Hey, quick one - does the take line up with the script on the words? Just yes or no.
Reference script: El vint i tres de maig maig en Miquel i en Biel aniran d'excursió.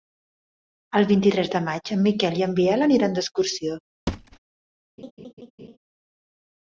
no